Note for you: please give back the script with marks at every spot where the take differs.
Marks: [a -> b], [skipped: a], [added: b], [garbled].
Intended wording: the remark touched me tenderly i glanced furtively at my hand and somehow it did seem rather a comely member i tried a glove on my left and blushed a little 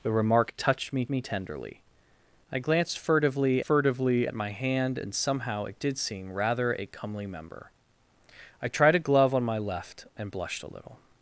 the remark touched me [added: me] tenderly i glanced furtively [added: furtively] at my hand and somehow it did seem rather a comely member i tried a glove on my left and blushed a little